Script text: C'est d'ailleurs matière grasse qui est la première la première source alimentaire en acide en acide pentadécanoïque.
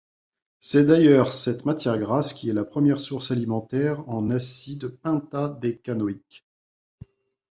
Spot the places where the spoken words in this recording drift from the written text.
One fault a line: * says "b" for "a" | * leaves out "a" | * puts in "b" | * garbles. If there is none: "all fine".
* puts in "cette"
* leaves out "la première"
* leaves out "en acide"